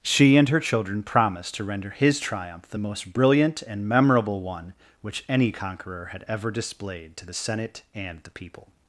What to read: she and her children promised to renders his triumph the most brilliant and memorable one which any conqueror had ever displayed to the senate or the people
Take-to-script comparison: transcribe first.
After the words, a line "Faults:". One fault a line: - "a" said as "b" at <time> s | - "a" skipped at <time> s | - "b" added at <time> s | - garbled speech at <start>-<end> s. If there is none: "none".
she and her children promised to render his triumph the most brilliant and memorable one which any conqueror had ever displayed to the senate and the people
Faults:
- "renders" said as "render" at 1.6 s
- "or" said as "and" at 7.9 s